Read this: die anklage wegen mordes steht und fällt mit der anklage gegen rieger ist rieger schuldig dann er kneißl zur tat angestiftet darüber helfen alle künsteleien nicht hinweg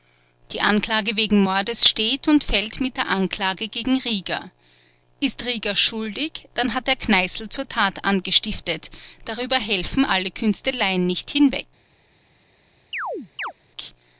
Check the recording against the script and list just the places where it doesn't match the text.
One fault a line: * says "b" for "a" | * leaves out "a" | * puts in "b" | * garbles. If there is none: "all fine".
* puts in "hat"